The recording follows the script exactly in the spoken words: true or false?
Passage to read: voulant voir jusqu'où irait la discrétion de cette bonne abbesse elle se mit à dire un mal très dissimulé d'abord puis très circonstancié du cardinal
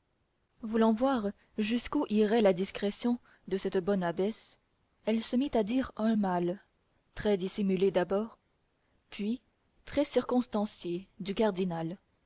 true